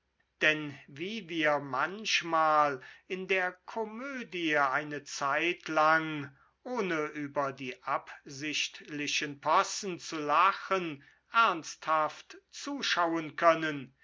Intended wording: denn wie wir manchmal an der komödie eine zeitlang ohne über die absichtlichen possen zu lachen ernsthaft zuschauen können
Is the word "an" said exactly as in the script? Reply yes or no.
no